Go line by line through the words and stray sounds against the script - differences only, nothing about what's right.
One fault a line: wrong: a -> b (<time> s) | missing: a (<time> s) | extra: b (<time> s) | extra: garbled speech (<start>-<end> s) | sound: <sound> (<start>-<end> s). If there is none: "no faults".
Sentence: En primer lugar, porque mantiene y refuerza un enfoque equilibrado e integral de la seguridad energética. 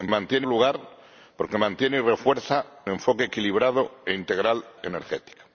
wrong: primer -> mantiene (0.1 s)
missing: un (2.6 s)
missing: de la seguridad (4.6 s)